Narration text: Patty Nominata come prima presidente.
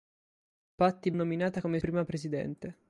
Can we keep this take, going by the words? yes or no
yes